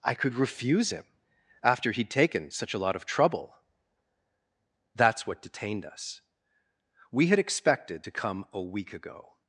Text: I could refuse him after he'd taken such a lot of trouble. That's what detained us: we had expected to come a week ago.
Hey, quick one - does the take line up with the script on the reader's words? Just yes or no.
yes